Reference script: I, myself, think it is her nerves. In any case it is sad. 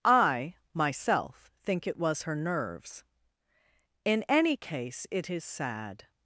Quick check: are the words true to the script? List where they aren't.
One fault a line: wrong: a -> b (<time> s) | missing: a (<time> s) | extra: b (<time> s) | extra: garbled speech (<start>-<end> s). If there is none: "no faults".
wrong: is -> was (2.0 s)